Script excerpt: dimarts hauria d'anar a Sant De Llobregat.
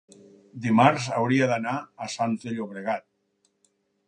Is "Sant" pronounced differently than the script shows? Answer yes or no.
no